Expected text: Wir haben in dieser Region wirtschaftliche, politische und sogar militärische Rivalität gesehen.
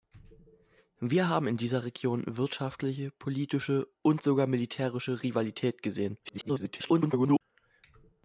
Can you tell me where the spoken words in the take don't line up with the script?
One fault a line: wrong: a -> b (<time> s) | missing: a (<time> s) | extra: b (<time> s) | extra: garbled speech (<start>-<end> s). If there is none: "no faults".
extra: garbled speech (6.2-7.4 s)